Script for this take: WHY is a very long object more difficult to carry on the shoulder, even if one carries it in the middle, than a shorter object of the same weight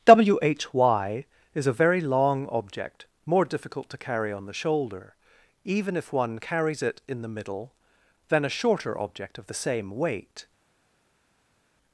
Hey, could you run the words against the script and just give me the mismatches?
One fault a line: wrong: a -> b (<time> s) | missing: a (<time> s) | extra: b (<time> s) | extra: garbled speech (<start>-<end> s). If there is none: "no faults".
no faults